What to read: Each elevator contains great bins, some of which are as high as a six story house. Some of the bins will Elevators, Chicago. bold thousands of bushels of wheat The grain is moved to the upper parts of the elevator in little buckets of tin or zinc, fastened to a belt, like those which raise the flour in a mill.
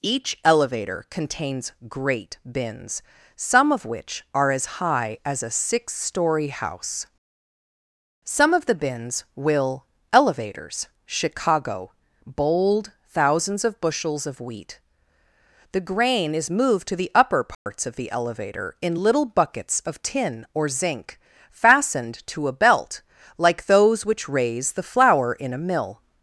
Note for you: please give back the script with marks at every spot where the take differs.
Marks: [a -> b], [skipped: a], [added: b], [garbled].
Each elevator contains great bins, some of which are as high as a six story house. Some of the bins will Elevators, Chicago. bold thousands of bushels of wheat The grain is moved to the upper parts of the elevator in little buckets of tin or zinc, fastened to a belt, like those which raise the flour in a mill.